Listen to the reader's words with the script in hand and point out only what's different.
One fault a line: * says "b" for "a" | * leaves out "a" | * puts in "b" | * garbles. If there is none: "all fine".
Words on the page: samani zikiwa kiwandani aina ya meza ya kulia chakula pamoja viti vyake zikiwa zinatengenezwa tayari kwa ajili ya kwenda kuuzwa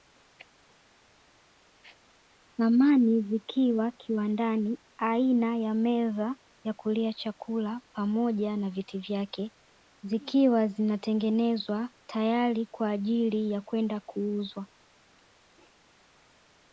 * puts in "na"